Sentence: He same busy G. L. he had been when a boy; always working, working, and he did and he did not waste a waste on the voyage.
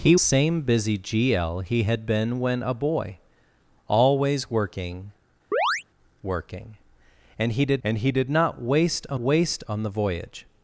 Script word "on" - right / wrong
right